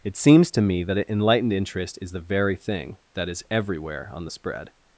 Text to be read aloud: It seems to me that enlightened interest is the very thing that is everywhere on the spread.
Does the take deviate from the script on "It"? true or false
false